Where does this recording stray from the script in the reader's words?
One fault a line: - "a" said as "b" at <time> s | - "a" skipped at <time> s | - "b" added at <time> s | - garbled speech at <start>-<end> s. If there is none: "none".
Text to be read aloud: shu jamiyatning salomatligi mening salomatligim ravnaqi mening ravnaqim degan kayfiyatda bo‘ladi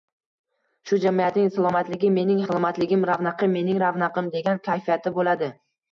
none